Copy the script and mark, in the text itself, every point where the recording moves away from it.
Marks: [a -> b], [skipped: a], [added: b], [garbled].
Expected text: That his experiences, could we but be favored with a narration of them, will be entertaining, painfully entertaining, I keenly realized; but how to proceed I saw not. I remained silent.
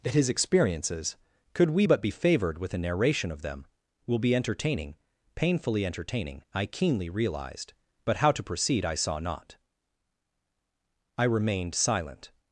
That his experiences, could we but be favored with a narration of them, will be entertaining, painfully entertaining, I keenly realized; but how to proceed I saw not. I remained silent.